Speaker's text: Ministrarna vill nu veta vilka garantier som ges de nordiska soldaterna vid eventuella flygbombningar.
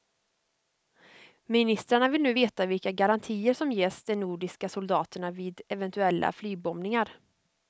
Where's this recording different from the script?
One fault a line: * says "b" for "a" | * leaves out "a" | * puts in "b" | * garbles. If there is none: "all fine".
all fine